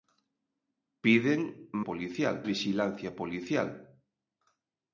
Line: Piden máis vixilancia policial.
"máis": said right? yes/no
no